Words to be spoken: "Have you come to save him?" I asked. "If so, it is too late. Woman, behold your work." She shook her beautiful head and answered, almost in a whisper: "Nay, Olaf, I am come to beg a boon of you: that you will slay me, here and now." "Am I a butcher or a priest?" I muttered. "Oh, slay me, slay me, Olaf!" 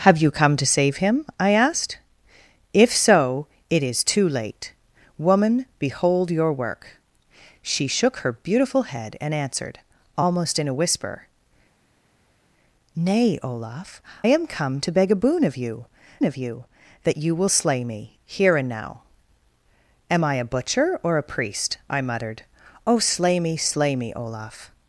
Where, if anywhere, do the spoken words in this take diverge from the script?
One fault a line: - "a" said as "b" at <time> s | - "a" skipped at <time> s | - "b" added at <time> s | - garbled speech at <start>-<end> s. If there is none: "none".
- "I" skipped at 14.0 s
- "of you" added at 16.2 s